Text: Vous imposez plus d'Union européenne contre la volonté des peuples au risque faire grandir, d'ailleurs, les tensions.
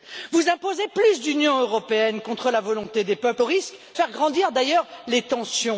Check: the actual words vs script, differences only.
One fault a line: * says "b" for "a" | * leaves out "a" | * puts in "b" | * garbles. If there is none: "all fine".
all fine